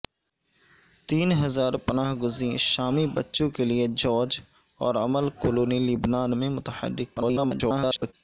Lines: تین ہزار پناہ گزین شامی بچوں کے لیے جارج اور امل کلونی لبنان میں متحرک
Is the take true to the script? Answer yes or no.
no